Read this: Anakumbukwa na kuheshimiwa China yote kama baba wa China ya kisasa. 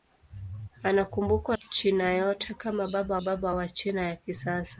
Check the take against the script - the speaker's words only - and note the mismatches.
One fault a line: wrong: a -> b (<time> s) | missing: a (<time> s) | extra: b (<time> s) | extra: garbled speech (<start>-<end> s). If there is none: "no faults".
missing: na kuheshimiwa (1.6 s)
extra: baba (3.2 s)